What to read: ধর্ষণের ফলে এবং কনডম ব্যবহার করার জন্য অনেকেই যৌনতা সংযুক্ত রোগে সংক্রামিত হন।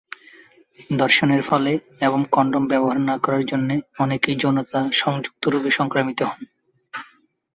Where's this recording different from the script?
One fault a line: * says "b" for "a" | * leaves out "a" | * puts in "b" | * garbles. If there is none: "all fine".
* puts in "না"